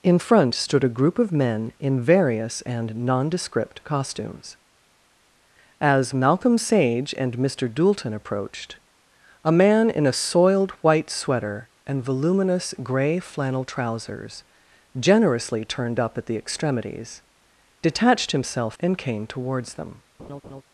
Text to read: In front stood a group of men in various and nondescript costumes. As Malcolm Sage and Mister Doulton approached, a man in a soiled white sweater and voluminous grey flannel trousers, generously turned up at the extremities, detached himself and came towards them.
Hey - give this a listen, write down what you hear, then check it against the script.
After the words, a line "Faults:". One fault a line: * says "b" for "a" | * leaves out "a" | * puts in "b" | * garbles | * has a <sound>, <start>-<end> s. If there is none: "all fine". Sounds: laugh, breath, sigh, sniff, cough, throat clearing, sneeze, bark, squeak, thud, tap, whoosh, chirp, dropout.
In front stood a group of men in various and nondescript costumes. As Malcolm Sage and Mister Doulton approached, a man in a soiled white sweater and voluminous grey flannel trousers, generously turned up at the extremities, detached himself and came towards them.
Faults:
* has a laugh, 20.2-20.6 s